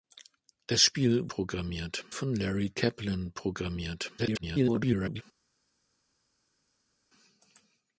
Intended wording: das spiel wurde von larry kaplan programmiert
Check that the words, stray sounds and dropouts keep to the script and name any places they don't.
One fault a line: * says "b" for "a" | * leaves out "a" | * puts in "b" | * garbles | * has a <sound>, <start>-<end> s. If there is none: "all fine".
* says "programmiert" for "wurde"
* garbles